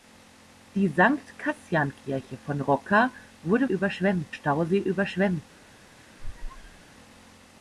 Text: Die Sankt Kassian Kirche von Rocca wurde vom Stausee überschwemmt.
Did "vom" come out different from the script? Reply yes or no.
yes